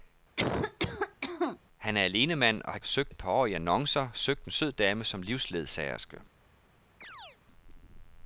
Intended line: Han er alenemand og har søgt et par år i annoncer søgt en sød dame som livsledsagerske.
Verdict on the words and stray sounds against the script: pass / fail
fail